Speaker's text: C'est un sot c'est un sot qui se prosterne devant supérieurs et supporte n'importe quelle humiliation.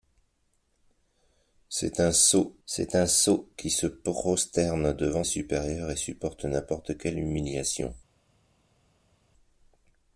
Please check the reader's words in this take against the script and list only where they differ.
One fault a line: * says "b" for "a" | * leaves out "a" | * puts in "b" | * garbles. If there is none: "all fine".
all fine